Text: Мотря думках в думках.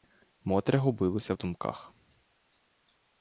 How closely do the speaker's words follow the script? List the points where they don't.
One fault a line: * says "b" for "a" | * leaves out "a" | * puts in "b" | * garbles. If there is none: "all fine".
* says "губилася" for "думках"